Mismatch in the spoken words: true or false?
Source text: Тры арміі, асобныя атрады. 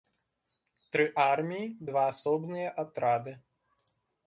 true